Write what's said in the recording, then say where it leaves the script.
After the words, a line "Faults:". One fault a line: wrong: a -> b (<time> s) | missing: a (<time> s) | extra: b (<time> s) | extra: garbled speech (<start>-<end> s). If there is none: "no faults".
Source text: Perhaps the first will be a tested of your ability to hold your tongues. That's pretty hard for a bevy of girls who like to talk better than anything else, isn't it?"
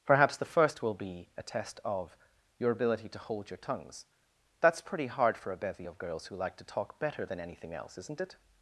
Perhaps the first will be a test of your ability to hold your tongues. That's pretty hard for a bevy of girls who like to talk better than anything else, isn't it?"
Faults:
wrong: tested -> test (1.4 s)